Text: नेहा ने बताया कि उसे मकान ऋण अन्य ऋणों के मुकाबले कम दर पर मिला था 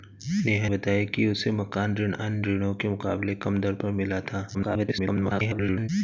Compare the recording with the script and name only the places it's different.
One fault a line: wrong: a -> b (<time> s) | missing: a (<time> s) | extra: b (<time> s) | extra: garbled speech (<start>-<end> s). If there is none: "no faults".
missing: ने (0.7 s)
extra: garbled speech (4.5-5.9 s)